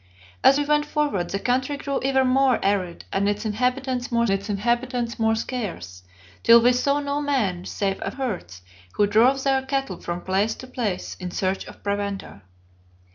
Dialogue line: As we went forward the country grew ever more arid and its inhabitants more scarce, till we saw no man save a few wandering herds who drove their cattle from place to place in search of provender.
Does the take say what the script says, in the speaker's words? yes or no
no